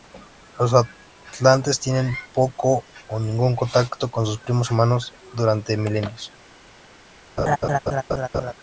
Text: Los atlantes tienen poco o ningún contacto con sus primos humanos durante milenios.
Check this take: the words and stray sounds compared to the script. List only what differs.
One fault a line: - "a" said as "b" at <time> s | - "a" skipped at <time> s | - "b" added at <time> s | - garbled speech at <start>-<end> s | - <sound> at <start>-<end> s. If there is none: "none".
- laugh at 7.4-8.5 s